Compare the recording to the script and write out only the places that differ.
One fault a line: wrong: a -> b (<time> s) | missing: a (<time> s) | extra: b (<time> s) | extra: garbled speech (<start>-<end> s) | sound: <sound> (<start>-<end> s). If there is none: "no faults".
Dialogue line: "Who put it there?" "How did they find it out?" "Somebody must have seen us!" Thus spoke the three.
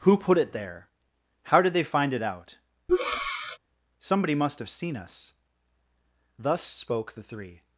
sound: breath (2.9-3.6 s)